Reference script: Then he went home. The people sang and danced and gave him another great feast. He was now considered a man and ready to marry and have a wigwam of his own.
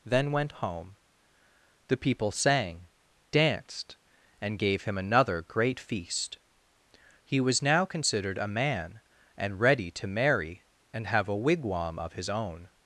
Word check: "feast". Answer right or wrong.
right